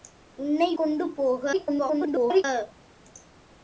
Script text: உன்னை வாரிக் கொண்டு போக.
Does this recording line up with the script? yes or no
no